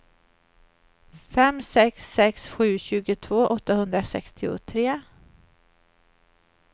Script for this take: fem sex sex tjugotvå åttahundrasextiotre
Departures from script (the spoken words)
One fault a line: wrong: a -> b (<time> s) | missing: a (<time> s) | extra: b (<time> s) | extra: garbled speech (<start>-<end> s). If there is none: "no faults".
extra: sju (2.5 s)